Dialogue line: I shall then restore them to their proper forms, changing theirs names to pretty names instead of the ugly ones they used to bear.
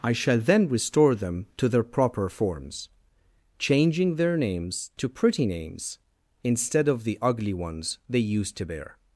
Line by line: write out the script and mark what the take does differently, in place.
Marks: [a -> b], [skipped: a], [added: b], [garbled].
I shall then restore them to their proper forms, changing [theirs -> their] names to pretty names instead of the ugly ones they used to bear.